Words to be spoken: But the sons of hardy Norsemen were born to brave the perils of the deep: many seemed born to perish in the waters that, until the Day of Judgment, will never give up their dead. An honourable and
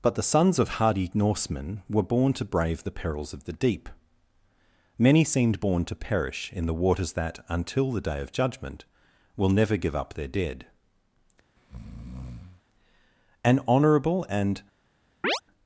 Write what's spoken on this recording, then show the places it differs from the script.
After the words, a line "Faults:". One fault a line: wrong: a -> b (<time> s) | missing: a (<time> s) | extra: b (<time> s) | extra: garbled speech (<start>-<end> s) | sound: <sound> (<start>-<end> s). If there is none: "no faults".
But the sons of hardy Norsemen were born to brave the perils of the deep: many seemed born to perish in the waters that, until the Day of Judgment, will never give up their dead. An honourable and
Faults:
sound: breath (11.6-12.6 s)
sound: chirp (15.2-15.4 s)